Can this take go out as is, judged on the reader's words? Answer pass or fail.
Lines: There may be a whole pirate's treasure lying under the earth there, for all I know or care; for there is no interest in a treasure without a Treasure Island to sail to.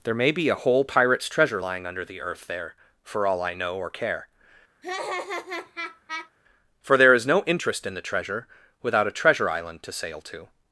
fail